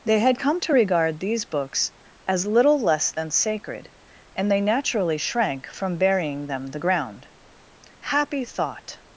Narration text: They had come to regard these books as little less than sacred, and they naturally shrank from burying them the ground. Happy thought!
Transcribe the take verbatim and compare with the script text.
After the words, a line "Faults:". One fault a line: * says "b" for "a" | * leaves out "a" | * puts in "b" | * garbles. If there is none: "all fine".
They had come to regard these books as little less than sacred, and they naturally shrank from burying them the ground. Happy thought!
Faults:
all fine